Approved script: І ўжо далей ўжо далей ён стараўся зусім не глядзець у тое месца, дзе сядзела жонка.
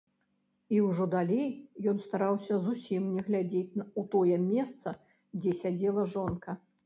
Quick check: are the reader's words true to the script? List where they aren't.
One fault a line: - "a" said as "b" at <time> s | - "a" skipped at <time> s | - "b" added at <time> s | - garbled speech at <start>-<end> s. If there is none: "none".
- "ўжо далей" skipped at 1.5 s